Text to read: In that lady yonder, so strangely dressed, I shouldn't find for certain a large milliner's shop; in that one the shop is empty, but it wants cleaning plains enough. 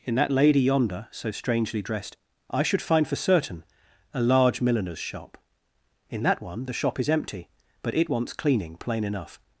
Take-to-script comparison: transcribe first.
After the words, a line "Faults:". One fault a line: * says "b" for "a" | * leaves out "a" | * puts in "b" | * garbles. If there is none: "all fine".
In that lady yonder, so strangely dressed, I should find for certain a large milliner's shop; in that one the shop is empty, but it wants cleaning plain enough.
Faults:
* says "should" for "shouldn't"
* says "plain" for "plains"